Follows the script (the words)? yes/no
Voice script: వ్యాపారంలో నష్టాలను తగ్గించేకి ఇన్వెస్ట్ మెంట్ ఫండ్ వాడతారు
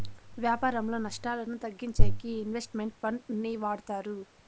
no